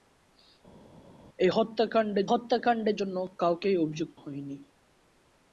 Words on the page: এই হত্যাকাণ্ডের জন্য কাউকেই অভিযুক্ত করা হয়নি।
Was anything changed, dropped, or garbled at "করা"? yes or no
yes